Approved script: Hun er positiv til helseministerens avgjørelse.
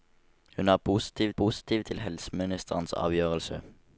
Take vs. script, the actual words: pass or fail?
fail